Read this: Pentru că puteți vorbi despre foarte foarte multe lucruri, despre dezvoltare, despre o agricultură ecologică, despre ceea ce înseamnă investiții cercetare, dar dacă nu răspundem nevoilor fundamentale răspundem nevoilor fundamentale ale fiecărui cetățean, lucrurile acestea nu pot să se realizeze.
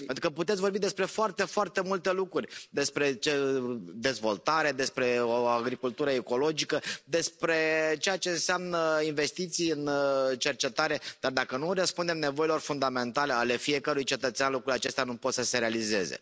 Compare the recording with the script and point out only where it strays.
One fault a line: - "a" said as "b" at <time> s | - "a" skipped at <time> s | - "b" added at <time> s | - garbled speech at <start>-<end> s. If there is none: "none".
- "în" added at 9.7 s
- "răspundem nevoilor fundamentale" skipped at 13.3 s